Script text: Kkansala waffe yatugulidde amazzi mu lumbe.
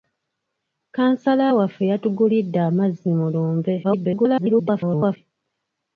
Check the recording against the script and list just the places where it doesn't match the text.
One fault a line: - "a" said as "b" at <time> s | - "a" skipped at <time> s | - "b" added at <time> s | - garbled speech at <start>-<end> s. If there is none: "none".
- garbled speech at 3.8-5.2 s